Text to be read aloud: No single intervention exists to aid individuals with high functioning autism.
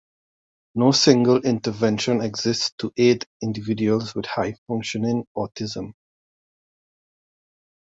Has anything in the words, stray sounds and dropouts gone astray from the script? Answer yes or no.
no